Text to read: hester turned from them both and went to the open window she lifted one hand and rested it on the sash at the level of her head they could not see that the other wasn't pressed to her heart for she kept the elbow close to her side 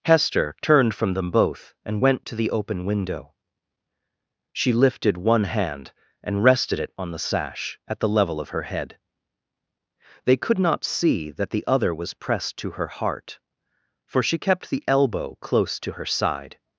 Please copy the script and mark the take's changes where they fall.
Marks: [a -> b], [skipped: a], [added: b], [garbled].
hester turned from them both and went to the open window she lifted one hand and rested it on the sash at the level of her head they could not see that the other [wasn't -> was] pressed to her heart for she kept the elbow close to her side